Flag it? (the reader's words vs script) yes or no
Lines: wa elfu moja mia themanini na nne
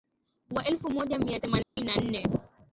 no